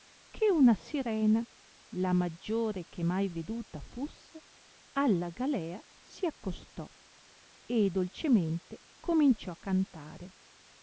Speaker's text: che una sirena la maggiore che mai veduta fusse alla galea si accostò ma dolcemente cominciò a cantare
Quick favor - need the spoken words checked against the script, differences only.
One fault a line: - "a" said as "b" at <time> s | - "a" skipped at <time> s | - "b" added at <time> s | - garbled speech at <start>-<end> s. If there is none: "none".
- "ma" said as "e" at 7.6 s